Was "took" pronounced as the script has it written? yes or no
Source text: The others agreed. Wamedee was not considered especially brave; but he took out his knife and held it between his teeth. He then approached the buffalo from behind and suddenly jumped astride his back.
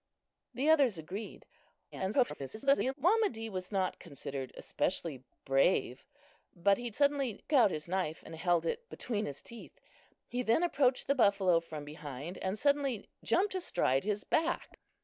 no